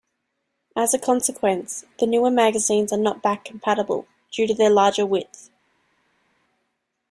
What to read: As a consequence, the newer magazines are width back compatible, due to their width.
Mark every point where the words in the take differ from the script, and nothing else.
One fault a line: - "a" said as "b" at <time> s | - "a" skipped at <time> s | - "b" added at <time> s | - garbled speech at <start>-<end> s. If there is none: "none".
- "width" said as "not" at 3.0 s
- "larger" added at 4.7 s